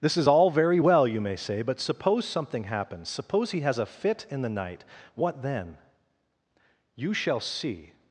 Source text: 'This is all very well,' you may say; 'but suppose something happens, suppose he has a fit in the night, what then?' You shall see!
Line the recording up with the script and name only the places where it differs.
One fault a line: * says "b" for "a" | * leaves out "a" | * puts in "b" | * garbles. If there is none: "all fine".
all fine